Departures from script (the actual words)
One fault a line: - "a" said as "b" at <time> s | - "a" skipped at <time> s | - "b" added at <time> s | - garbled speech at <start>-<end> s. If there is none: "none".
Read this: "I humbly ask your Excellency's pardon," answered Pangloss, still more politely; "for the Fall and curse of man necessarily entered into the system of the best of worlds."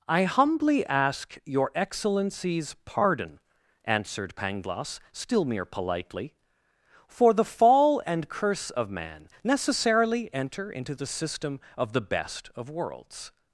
- "more" said as "mere" at 5.5 s
- "entered" said as "enter" at 10.3 s